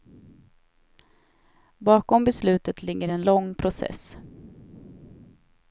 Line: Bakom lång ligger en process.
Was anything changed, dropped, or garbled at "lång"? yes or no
yes